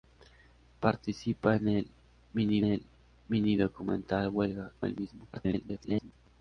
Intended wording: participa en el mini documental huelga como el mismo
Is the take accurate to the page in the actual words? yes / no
no